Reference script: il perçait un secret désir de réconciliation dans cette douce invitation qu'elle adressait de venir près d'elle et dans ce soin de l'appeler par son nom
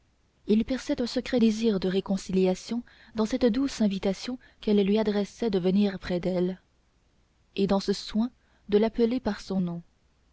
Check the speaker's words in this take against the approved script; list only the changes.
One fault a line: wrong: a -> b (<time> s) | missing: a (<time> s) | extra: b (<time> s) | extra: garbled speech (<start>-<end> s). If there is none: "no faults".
extra: lui (4.8 s)